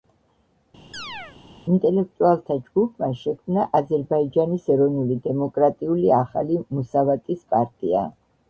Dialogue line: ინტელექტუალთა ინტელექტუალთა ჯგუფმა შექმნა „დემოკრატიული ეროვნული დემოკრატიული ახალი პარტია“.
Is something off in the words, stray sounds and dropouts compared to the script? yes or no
yes